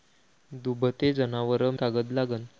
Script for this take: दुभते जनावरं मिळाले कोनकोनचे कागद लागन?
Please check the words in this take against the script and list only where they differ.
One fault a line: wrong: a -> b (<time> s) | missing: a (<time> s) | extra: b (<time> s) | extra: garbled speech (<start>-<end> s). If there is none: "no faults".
missing: मिळाले कोनकोनचे (1.8 s)